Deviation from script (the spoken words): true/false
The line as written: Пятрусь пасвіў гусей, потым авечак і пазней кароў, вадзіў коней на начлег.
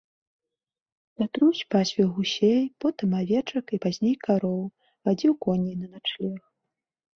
false